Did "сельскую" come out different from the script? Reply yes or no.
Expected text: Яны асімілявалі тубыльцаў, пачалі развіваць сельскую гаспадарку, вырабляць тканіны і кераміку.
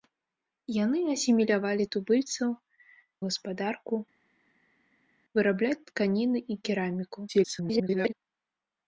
yes